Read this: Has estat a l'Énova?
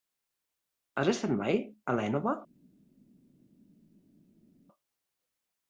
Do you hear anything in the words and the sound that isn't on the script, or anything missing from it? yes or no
yes